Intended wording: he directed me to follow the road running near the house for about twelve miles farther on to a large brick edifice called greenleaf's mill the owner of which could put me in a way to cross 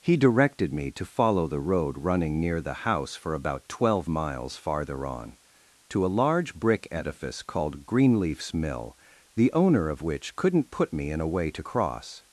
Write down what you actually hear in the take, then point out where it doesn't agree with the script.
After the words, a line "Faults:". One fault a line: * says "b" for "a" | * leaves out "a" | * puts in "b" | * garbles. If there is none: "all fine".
he directed me to follow the road running near the house for about twelve miles farther on to a large brick edifice called greenleaf's mill the owner of which couldn't put me in a way to cross
Faults:
* says "couldn't" for "could"